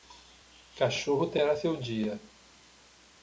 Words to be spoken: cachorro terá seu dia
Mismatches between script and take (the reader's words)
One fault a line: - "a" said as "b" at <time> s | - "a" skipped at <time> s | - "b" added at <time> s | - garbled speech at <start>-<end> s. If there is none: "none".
none